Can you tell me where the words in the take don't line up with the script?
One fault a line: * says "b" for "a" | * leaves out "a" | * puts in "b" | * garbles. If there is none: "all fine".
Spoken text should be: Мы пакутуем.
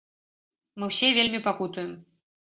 * puts in "ўсе вельмі"